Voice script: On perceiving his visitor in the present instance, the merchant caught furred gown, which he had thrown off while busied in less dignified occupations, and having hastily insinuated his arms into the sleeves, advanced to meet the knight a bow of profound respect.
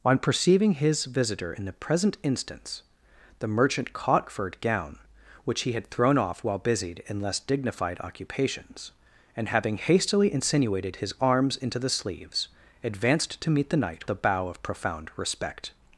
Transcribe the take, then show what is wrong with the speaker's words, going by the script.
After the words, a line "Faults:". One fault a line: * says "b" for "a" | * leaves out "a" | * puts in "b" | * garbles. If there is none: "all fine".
On perceiving his visitor in the present instance, the merchant caught furred gown, which he had thrown off while busied in less dignified occupations, and having hastily insinuated his arms into the sleeves, advanced to meet the knight a bow of profound respect.
Faults:
all fine